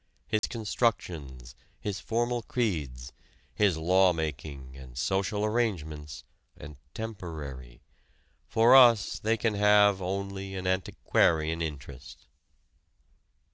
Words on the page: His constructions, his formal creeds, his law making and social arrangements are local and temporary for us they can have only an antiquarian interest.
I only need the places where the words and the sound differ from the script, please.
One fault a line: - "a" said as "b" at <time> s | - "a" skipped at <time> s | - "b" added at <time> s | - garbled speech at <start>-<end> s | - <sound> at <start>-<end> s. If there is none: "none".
- dropout at 0.4-0.4 s
- "are local" skipped at 6.2 s